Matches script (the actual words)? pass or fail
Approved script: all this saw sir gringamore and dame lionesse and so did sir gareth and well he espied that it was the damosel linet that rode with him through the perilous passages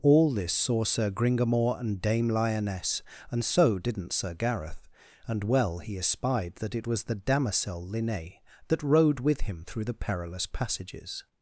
fail